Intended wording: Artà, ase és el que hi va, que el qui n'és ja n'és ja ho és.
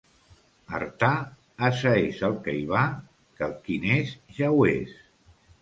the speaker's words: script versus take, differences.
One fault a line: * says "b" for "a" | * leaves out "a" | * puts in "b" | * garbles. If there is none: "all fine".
* leaves out "n'és ja"